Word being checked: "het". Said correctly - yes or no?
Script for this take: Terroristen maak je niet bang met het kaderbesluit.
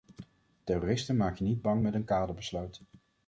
no